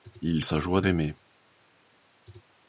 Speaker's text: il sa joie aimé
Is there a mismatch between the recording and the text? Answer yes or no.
no